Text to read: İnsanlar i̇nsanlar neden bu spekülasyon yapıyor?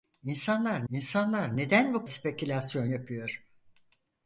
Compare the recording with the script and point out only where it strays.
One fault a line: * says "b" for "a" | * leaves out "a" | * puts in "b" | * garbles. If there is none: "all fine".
all fine